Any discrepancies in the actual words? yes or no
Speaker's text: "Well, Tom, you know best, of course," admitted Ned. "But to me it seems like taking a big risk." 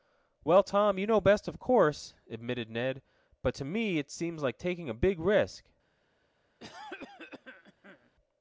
no